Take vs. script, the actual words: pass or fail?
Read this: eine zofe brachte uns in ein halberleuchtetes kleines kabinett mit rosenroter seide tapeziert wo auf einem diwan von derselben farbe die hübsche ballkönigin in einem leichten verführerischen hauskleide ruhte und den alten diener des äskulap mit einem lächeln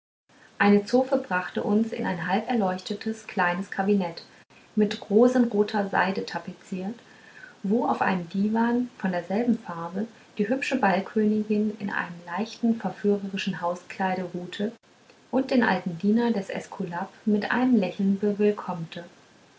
pass